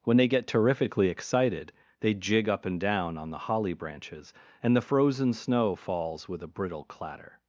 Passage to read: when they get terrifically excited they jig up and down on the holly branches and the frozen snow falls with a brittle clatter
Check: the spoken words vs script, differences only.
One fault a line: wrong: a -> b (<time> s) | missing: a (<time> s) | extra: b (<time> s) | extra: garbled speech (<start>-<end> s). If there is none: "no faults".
no faults